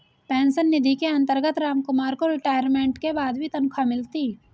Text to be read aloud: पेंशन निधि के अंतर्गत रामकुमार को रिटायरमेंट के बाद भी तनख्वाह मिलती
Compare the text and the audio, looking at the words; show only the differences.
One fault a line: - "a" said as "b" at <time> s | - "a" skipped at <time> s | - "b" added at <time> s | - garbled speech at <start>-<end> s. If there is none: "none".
none